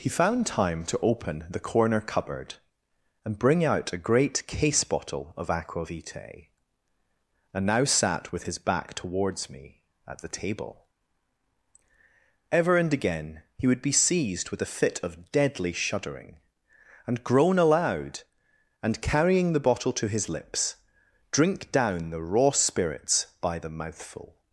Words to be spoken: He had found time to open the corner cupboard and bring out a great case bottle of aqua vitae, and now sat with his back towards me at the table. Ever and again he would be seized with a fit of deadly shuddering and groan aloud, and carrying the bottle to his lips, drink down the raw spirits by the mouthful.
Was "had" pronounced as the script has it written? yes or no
no